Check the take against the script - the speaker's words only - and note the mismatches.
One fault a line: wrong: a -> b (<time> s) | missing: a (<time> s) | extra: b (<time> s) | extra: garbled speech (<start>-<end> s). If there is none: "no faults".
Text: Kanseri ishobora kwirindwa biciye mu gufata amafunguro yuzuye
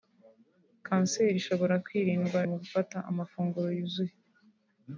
missing: biciye (2.4 s)